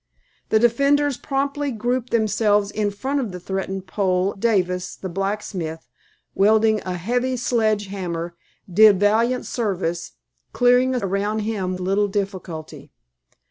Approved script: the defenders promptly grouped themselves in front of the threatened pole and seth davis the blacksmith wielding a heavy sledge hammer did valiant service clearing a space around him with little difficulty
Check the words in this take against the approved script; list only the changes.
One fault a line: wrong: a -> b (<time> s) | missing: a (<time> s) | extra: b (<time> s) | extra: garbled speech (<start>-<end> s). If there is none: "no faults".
missing: and seth (4.3 s)
missing: space (11.0 s)
missing: with (11.8 s)